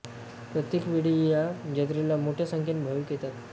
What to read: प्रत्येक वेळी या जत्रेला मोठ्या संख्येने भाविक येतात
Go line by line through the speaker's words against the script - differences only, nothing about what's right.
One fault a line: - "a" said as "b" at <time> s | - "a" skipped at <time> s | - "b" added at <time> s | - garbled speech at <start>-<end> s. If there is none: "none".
none